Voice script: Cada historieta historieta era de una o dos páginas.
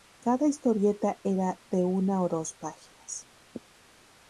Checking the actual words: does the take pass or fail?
fail